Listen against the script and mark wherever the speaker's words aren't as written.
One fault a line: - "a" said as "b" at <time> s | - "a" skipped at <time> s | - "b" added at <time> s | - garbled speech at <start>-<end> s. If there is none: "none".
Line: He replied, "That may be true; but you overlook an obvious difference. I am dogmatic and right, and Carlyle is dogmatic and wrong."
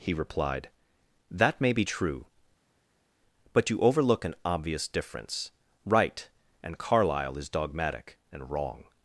- "I am dogmatic and" skipped at 5.5 s